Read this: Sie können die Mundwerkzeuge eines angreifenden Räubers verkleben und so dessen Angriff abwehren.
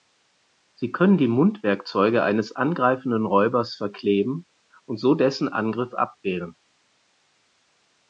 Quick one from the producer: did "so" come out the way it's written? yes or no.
yes